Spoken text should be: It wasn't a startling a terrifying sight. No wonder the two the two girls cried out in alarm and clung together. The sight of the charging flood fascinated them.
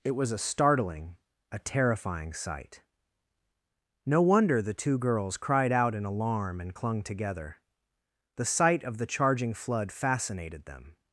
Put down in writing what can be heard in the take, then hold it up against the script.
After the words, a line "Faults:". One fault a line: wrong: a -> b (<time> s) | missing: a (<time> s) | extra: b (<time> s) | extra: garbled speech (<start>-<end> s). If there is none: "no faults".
It was a startling a terrifying sight. No wonder the two girls cried out in alarm and clung together. The sight of the charging flood fascinated them.
Faults:
wrong: wasn't -> was (0.1 s)
missing: the two (5.0 s)